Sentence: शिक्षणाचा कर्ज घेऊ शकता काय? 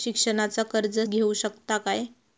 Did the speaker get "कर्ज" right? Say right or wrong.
right